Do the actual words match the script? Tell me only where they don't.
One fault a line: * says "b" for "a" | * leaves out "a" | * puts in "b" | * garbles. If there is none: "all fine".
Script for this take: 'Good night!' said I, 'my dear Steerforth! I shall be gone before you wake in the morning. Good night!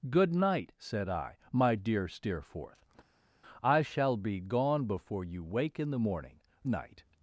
* leaves out "Good"